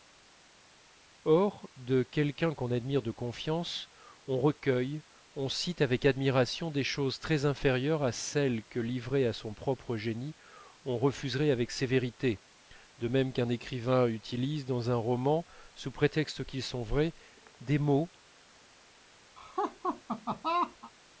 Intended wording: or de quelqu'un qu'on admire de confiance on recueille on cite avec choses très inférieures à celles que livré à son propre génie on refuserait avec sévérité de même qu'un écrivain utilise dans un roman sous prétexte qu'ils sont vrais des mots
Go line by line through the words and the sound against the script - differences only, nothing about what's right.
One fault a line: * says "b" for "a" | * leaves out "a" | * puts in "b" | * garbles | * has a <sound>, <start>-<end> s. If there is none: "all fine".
* puts in "admiration des"
* has a laugh, 19.4-20.9 s